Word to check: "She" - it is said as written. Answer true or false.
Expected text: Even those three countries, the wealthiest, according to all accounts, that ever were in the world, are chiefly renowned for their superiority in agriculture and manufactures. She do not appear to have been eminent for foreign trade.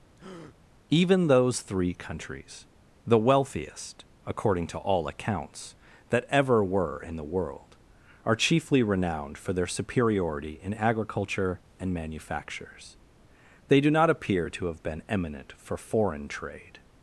false